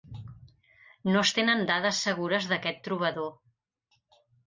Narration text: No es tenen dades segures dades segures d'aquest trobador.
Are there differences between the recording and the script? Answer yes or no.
yes